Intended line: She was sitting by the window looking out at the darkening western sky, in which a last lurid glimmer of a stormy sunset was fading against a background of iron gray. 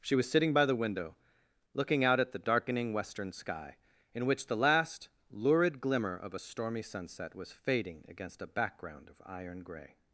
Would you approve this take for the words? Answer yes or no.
no